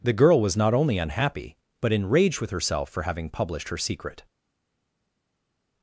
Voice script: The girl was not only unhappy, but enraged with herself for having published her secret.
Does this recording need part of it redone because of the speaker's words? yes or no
no